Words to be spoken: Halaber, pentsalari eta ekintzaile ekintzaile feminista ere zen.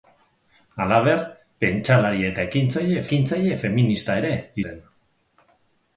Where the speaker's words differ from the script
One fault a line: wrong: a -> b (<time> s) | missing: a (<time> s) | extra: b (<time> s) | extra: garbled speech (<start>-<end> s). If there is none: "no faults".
no faults